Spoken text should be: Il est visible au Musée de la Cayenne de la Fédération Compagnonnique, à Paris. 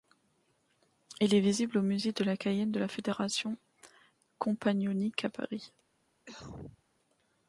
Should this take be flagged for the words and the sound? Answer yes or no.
yes